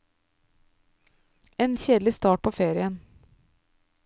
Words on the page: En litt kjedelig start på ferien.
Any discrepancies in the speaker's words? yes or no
yes